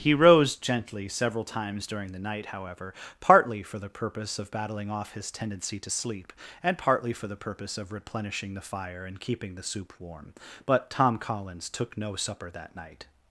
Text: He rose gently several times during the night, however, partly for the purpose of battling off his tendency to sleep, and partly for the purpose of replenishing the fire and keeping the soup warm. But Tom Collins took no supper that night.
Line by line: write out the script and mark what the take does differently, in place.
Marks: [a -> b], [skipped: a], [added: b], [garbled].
He rose gently several times during the night, however, partly for the purpose of battling off his tendency to sleep, and partly for the purpose of replenishing the fire and keeping the soup warm. But Tom Collins took no supper that night.